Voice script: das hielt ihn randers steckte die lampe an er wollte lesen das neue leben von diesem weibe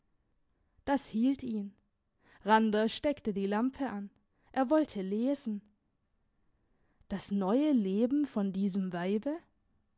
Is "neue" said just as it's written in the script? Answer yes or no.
yes